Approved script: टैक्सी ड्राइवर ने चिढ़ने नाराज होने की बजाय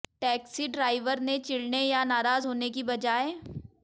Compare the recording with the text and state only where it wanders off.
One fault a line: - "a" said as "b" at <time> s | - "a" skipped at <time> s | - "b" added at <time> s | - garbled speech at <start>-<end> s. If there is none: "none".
- "या" added at 1.8 s